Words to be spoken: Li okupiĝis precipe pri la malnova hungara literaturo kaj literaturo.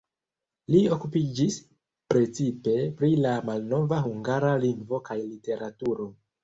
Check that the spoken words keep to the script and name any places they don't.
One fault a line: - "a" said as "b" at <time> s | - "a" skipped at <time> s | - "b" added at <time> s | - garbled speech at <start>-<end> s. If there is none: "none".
- "literaturo" said as "lingvo" at 4.7 s